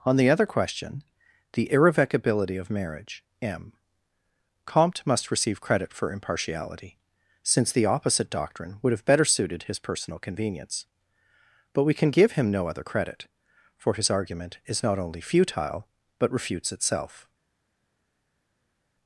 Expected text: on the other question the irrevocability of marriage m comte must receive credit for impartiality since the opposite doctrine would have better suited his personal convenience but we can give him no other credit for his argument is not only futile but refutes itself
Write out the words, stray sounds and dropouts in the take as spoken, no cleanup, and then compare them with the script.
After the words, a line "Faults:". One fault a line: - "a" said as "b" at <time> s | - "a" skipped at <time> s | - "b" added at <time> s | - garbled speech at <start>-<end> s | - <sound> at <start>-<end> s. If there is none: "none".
on the other question the irrevocability of marriage m comte must receive credit for impartiality since the opposite doctrine would have better suited his personal convenience but we can give him no other credit for his argument is not only futile but refutes itself
Faults:
none